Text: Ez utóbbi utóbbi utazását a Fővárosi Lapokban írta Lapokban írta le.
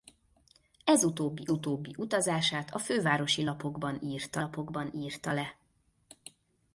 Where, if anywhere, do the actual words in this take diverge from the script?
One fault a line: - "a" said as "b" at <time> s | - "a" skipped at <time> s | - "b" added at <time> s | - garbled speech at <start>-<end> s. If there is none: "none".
none